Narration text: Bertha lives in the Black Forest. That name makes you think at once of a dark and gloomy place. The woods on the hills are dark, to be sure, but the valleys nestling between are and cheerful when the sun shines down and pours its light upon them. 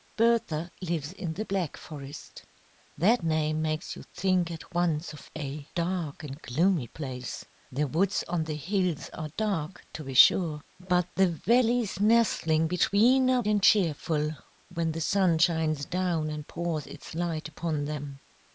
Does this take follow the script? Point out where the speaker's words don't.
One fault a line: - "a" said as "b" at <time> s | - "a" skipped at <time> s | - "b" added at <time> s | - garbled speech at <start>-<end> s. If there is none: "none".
none